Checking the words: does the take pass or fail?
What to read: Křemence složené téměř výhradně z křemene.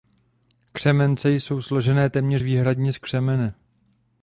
fail